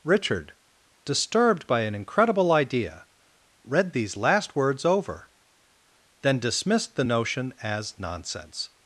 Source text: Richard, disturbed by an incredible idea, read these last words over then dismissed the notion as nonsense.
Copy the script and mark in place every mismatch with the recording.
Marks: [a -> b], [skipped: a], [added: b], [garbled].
Richard, disturbed by an incredible idea, read these last words over then dismissed the notion as nonsense.